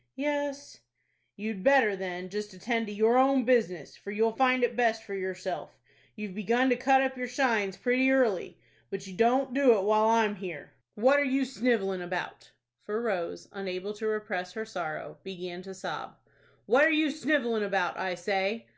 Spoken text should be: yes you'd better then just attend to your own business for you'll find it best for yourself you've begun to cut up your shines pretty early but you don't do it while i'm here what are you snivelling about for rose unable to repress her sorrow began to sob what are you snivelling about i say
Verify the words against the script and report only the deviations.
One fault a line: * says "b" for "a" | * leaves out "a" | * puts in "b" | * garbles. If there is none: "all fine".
all fine